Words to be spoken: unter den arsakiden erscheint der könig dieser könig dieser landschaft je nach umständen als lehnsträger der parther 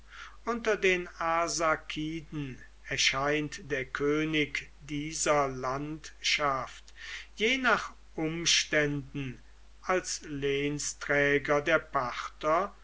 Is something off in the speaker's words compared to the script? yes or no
yes